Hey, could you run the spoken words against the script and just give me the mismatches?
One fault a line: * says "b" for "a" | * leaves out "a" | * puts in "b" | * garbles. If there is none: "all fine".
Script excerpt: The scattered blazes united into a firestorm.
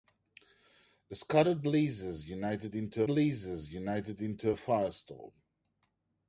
* puts in "blazes united into"